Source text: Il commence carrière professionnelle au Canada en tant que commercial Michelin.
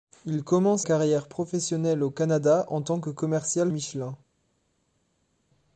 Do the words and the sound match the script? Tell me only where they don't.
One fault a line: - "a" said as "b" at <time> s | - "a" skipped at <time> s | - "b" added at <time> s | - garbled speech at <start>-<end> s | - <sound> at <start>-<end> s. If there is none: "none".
none